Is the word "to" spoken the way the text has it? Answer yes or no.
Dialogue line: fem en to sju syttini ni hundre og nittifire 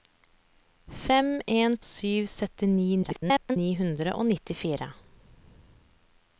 no